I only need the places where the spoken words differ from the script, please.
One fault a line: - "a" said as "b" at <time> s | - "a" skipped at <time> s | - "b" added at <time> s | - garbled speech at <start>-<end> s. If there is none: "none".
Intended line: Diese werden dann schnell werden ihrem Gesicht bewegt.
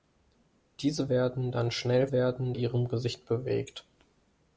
none